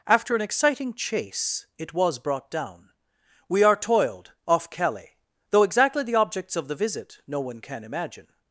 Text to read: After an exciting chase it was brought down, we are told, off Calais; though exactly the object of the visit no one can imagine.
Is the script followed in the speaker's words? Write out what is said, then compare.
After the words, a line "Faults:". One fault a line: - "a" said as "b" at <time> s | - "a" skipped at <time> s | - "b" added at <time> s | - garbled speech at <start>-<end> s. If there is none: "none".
After an exciting chase it was brought down, we are toiled, off Calais; though exactly the objects of the visit no one can imagine.
Faults:
- "told" said as "toiled" at 3.8 s
- "object" said as "objects" at 6.1 s